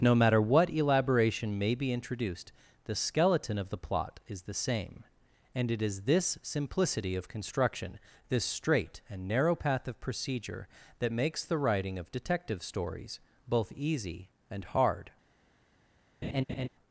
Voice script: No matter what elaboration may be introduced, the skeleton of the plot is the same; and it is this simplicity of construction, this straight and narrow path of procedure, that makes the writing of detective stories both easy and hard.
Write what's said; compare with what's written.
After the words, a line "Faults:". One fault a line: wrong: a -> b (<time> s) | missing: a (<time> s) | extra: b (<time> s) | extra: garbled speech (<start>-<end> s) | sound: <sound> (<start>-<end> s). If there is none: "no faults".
No matter what elaboration may be introduced, the skeleton of the plot is the same; and it is this simplicity of construction, this straight and narrow path of procedure, that makes the writing of detective stories both easy and hard.
Faults:
sound: laugh (16.2-16.7 s)